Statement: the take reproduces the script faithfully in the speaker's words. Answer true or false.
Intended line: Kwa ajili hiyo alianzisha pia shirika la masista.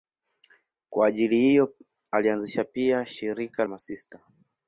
false